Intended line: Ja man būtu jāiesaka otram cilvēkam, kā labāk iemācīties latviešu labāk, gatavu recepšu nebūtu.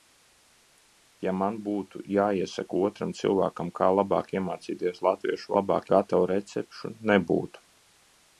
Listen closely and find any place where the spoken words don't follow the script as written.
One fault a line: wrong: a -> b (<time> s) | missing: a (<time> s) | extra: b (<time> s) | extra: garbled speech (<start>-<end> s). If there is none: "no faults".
no faults